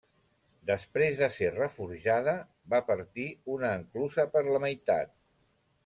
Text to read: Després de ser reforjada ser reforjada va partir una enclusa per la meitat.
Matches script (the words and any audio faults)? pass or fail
fail